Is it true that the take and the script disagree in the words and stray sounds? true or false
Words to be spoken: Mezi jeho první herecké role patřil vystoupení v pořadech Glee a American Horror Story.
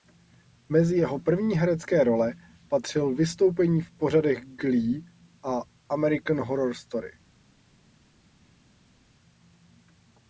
false